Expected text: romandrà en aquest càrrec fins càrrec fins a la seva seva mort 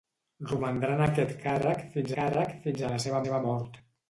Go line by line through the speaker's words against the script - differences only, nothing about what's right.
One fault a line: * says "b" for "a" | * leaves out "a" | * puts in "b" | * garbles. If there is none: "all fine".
all fine